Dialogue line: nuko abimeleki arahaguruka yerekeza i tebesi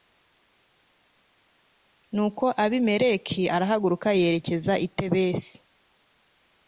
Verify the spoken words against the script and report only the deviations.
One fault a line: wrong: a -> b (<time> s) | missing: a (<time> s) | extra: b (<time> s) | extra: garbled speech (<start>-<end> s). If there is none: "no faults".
no faults